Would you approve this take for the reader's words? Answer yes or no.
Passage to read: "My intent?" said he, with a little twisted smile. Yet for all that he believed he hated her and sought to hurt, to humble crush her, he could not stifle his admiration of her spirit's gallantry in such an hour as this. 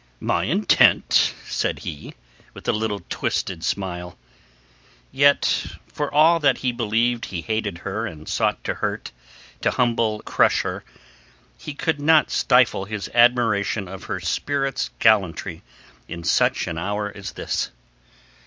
yes